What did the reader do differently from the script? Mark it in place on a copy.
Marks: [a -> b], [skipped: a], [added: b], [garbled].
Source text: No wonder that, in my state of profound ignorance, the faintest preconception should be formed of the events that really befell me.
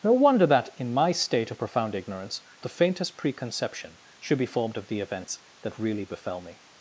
No wonder that, in my state of profound ignorance, the faintest preconception should be formed of the events that really befell me.